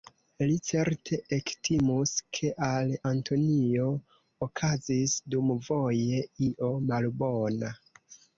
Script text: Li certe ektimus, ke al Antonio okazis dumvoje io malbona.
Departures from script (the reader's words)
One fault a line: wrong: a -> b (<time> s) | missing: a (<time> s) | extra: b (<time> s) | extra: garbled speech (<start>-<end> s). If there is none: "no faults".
no faults